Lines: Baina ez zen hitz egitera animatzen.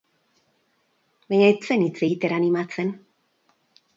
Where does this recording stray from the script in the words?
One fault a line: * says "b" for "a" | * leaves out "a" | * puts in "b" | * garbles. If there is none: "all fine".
all fine